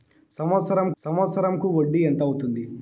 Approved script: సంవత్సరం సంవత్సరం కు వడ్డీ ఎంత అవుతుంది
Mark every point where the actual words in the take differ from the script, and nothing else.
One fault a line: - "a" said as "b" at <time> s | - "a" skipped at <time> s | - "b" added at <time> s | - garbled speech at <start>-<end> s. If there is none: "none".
none